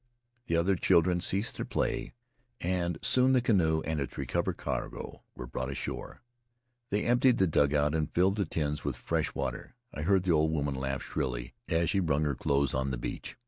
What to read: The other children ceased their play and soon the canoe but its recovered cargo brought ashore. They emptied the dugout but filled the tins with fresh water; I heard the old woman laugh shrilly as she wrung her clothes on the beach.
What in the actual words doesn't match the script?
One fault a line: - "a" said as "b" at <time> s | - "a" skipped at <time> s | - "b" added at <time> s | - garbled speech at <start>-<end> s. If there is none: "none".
- "but" said as "and" at 3.8 s
- "were" added at 5.3 s
- "but" said as "and" at 7.9 s